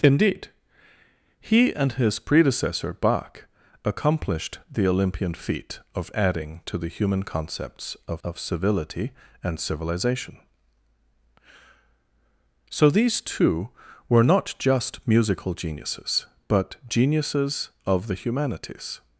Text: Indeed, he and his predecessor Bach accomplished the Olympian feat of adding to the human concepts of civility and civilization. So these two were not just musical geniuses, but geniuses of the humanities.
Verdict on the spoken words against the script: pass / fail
fail